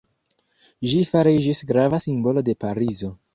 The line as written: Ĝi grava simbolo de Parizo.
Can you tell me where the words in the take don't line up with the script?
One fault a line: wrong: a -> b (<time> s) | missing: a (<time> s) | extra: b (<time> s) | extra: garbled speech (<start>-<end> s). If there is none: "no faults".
extra: fariĝis (1.1 s)